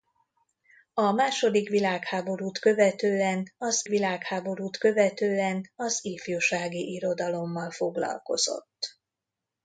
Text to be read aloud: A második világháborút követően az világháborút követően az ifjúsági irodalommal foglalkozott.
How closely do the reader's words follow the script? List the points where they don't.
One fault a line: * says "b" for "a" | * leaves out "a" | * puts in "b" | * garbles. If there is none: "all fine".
all fine